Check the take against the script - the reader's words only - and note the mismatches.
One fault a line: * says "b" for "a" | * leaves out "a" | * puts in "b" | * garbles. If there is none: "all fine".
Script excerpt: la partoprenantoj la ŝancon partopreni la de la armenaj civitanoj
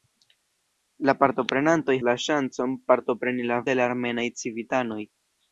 all fine